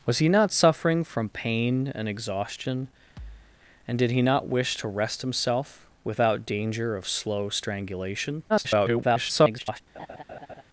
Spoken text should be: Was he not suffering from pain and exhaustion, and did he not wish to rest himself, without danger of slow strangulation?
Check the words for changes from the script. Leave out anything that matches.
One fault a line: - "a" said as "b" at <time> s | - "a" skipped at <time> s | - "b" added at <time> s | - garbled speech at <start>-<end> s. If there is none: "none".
- garbled speech at 8.5-9.8 s